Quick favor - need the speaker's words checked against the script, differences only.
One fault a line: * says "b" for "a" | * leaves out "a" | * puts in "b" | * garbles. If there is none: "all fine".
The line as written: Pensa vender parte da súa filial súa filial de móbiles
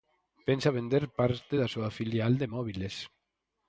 * leaves out "súa filial"